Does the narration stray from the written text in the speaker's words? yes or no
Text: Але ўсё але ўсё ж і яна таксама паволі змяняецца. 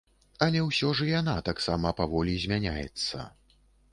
yes